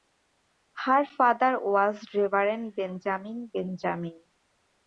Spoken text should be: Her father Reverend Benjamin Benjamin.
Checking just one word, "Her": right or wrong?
right